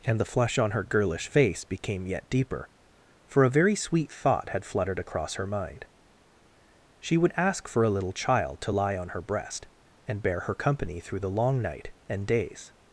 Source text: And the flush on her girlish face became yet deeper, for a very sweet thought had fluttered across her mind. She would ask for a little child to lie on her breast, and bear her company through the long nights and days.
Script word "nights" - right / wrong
wrong